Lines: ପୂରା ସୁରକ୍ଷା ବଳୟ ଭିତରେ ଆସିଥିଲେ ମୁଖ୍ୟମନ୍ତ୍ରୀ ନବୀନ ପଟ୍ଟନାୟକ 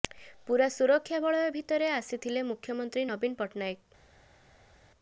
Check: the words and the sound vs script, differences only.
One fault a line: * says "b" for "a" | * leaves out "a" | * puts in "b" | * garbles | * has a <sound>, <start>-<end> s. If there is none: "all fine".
all fine